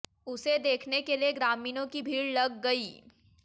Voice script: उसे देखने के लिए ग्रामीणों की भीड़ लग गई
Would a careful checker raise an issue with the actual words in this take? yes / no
no